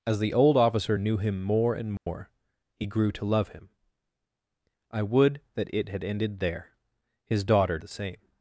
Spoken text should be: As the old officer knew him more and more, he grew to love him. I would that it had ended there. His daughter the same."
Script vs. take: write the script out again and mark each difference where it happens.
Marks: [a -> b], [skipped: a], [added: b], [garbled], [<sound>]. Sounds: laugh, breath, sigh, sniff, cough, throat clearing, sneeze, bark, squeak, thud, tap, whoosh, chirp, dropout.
As the old officer knew him more and more, [dropout] he grew to love him. I would that it had ended there. His daughter the same."